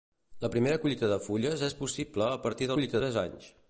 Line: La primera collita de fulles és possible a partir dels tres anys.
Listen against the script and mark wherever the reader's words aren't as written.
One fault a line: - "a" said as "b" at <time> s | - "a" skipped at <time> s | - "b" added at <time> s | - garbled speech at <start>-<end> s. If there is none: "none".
- "dels" said as "collita" at 2.8 s